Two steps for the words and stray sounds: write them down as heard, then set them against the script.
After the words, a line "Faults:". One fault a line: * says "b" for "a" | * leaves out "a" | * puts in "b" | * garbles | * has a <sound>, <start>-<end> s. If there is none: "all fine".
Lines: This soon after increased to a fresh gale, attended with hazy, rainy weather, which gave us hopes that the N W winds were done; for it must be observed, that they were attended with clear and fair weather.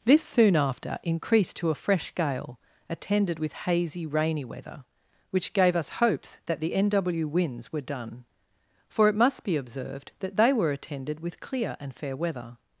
This soon after increased to a fresh gale, attended with hazy, rainy weather, which gave us hopes that the N W winds were done; for it must be observed, that they were attended with clear and fair weather.
Faults:
all fine